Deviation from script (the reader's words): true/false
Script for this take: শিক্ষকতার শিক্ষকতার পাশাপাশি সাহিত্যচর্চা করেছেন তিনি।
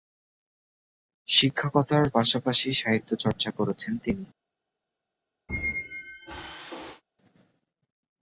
true